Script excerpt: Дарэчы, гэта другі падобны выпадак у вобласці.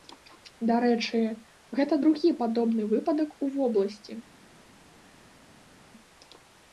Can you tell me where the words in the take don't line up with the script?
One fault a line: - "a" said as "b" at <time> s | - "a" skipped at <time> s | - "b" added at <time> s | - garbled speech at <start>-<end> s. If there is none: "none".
none